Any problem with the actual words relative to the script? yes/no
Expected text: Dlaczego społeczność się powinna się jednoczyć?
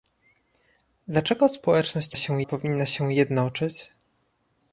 no